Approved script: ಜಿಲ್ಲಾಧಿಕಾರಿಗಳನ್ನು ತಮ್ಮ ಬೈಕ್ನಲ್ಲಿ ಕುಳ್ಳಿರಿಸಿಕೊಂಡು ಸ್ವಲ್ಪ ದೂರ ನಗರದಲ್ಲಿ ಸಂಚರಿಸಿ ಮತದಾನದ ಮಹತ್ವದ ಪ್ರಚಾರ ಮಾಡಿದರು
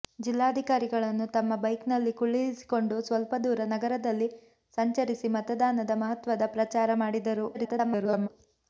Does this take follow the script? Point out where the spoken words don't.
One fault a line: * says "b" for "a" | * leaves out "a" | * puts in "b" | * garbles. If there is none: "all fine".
* garbles